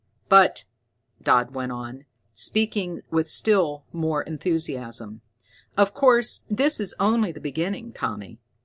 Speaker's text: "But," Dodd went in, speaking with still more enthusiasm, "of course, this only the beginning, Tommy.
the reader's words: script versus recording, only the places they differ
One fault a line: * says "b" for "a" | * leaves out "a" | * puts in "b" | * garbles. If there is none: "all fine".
* says "on" for "in"
* puts in "is"